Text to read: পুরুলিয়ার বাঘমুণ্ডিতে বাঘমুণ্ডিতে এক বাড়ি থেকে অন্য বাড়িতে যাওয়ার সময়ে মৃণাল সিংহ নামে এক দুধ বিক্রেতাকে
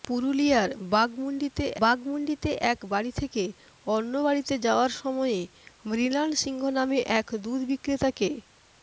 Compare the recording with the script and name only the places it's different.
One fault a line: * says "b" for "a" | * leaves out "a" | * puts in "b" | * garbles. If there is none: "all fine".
all fine